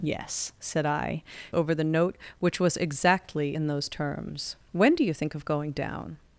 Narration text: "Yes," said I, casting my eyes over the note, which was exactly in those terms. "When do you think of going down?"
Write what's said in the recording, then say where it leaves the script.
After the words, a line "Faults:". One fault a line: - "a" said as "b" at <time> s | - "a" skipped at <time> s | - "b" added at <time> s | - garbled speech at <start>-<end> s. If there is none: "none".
"Yes," said I, over the note, which was exactly in those terms. "When do you think of going down?"
Faults:
- "casting my eyes" skipped at 1.2 s